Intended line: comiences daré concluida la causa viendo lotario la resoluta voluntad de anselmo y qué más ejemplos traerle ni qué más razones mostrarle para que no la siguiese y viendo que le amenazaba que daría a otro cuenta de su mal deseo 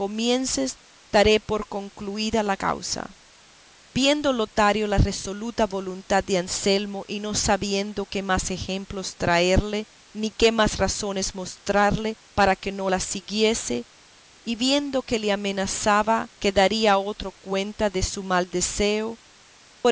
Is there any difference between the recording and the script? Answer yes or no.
yes